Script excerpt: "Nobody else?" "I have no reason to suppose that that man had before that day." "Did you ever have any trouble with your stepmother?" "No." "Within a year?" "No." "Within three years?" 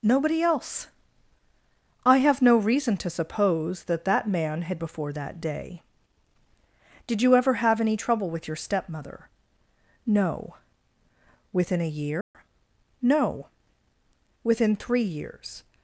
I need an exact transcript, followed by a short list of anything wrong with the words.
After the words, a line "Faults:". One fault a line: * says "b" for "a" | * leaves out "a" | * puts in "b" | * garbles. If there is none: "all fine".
"Nobody else?" "I have no reason to suppose that that man had before that day." "Did you ever have any trouble with your stepmother?" "No." "Within a year?" "No." "Within three years?"
Faults:
all fine